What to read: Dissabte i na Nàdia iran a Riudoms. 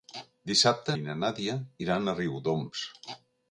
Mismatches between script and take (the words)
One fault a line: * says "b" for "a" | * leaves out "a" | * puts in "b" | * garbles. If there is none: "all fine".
all fine